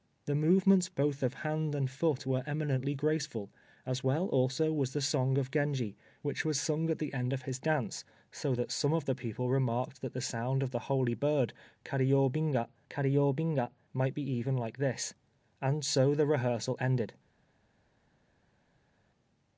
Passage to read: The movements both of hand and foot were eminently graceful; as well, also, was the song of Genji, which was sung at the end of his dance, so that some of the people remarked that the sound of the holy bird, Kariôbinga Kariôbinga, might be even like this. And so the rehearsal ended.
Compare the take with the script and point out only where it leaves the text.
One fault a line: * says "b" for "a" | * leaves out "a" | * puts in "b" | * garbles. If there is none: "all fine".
all fine